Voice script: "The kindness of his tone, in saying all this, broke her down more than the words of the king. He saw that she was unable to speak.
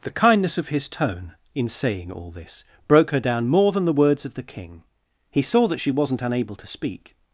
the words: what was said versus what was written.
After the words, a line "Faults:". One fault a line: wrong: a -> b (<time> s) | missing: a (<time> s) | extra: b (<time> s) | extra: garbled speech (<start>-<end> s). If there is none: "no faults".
"The kindness of his tone, in saying all this, broke her down more than the words of the king. He saw that she wasn't unable to speak.
Faults:
wrong: was -> wasn't (5.9 s)